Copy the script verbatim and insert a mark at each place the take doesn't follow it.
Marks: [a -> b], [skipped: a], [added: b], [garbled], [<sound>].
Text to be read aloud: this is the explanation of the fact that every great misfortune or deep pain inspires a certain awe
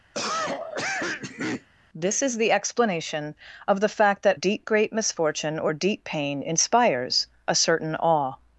[cough] this is the explanation of the fact that [every -> deep] great misfortune or deep pain inspires a certain awe